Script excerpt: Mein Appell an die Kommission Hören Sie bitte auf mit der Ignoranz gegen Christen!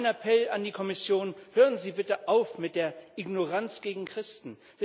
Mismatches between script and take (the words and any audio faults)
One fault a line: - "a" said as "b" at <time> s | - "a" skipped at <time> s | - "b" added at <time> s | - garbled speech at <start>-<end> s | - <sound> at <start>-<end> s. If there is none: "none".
none